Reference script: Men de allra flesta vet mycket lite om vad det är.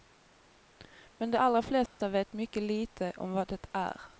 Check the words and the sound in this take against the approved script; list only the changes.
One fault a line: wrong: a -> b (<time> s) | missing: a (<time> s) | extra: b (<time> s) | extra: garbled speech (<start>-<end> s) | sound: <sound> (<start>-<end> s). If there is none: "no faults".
sound: dropout (1.9-2.0 s)